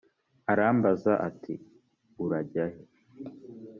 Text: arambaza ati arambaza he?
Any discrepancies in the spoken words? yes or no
yes